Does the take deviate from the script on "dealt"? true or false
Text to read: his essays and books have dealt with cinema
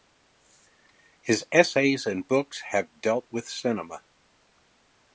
false